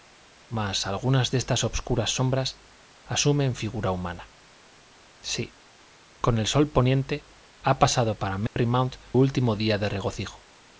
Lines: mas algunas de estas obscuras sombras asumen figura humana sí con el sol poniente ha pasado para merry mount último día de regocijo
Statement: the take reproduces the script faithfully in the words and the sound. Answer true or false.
false